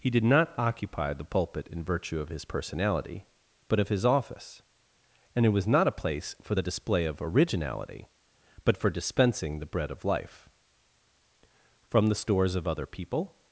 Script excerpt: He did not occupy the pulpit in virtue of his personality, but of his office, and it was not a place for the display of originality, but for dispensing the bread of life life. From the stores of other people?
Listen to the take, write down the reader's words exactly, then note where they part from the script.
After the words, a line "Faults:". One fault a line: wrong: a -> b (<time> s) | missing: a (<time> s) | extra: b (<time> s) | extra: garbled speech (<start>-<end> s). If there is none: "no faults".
He did not occupy the pulpit in virtue of his personality, but of his office, and it was not a place for the display of originality, but for dispensing the bread of life. From the stores of other people?
Faults:
missing: life (10.5 s)